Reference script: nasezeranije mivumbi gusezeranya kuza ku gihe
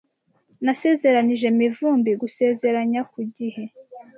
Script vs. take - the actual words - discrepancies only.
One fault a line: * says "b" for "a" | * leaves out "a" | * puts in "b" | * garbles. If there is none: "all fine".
* leaves out "kuza"